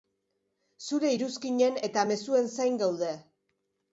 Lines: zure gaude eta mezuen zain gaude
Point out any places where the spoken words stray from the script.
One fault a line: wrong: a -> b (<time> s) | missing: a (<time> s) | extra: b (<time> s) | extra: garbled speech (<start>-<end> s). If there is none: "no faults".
wrong: gaude -> iruzkinen (1.2 s)